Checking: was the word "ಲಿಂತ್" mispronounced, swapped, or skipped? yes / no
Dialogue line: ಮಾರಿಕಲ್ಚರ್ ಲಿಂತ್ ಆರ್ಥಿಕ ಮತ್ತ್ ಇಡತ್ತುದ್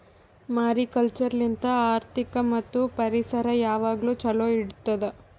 no